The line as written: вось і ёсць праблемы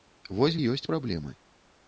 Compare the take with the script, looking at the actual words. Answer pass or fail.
pass